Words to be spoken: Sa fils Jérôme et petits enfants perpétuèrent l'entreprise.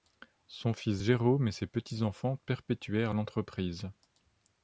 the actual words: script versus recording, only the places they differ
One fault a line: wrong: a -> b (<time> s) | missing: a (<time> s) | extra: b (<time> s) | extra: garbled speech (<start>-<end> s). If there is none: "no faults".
wrong: Sa -> Son (0.5 s)
extra: ses (1.5 s)